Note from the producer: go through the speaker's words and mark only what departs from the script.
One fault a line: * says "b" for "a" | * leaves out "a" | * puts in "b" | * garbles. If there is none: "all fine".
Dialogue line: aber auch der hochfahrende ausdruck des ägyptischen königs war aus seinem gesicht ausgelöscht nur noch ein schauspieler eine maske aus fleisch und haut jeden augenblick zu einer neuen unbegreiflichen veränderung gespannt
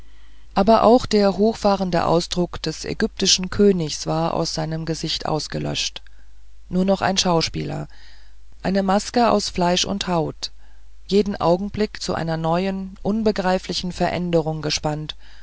all fine